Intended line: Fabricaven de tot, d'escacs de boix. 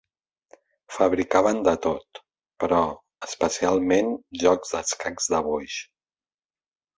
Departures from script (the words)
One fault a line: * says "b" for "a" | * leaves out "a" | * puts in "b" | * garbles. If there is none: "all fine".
* puts in "però especialment jocs"